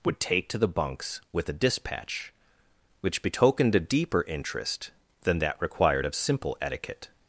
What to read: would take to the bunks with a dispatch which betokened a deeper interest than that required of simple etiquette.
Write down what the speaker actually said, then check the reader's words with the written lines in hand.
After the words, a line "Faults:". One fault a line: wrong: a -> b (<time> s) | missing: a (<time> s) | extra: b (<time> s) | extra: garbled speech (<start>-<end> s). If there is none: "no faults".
would take to the bunks with a dispatch which betokened a deeper interest than that required of simple etiquette.
Faults:
no faults